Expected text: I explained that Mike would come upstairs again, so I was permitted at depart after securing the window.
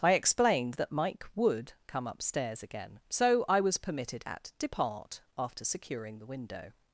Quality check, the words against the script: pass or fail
pass